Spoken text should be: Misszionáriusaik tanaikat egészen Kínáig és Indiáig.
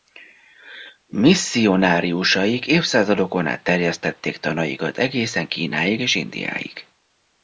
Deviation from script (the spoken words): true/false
true